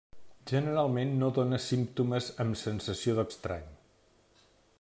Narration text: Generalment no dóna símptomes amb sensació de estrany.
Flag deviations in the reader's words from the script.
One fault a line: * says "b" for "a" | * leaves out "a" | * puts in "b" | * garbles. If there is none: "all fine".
all fine